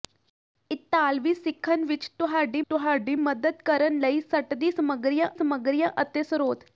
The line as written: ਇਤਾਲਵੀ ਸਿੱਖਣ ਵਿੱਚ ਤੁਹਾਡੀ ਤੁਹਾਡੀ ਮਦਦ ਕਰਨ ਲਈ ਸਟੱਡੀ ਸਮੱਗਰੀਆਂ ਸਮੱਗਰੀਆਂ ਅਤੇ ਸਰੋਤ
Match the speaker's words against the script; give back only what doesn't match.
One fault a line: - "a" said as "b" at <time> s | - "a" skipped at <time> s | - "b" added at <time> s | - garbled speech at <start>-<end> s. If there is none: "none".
none